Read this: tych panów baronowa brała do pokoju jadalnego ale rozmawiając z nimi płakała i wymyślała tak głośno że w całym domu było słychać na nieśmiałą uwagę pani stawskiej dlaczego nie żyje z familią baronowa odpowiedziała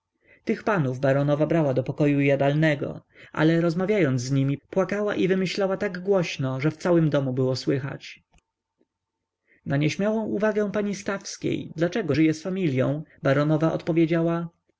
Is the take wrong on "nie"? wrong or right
wrong